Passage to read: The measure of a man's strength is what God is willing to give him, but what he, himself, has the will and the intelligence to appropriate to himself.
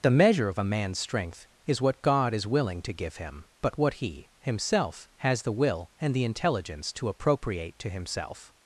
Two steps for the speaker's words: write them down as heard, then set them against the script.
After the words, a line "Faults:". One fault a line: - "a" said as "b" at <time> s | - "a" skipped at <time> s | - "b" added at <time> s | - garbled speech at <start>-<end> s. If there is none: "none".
The measure of a man's strength is what God is willing to give him, but what he, himself, has the will and the intelligence to appropriate to himself.
Faults:
none